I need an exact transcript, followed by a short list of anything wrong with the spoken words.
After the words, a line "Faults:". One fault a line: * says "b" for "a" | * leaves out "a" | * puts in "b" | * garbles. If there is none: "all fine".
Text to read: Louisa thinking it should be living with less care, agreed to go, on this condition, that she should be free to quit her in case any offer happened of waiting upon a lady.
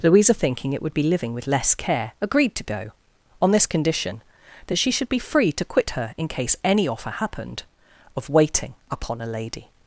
Louisa thinking it would be living with less care, agreed to go, on this condition, that she should be free to quit her in case any offer happened of waiting upon a lady.
Faults:
* says "would" for "should"